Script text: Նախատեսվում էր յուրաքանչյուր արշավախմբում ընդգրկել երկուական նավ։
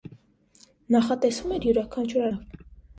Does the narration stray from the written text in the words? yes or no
yes